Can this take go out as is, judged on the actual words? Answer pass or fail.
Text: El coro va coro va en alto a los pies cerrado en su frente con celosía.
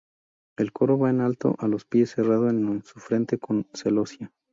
fail